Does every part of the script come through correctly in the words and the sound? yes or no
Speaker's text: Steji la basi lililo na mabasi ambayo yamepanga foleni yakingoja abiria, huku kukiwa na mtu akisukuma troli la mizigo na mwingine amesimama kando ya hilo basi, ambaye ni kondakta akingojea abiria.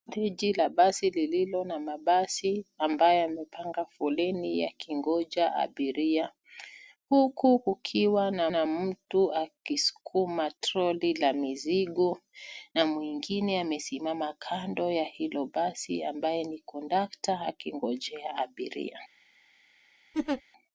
no